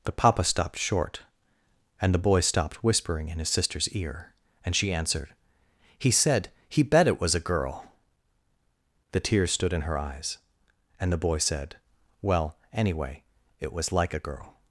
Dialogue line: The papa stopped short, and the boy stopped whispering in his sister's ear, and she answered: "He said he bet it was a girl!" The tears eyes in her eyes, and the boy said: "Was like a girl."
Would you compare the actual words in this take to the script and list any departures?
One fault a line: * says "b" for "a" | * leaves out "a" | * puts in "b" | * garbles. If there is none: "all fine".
* says "stood" for "eyes"
* puts in "Well anyway it"